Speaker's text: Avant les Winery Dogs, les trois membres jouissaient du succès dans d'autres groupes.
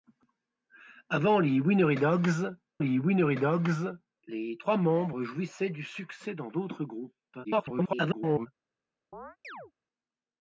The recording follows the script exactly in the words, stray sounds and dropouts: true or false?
false